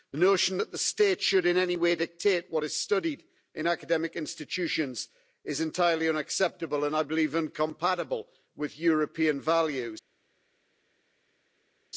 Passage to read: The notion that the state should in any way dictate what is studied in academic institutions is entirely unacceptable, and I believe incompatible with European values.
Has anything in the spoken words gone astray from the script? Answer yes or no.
no